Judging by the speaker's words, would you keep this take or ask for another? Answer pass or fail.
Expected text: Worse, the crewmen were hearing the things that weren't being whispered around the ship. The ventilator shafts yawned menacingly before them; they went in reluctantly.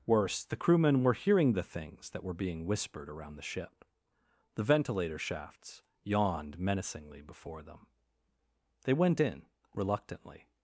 fail